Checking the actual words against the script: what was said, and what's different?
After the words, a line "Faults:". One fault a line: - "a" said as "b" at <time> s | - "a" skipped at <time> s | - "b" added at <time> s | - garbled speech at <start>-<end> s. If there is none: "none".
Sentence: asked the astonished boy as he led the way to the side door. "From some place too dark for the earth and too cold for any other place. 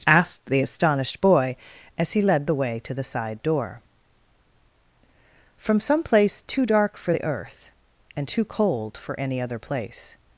asked the astonished boy as he led the way to the side door. "From some place too dark for the earth and too cold for any other place.
Faults:
none